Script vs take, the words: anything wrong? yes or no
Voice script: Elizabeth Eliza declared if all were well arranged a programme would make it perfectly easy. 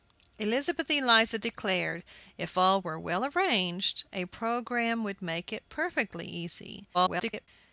yes